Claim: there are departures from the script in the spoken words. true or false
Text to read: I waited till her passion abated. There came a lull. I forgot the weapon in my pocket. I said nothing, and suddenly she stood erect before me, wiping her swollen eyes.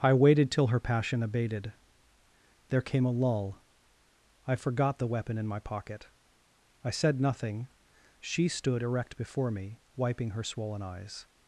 true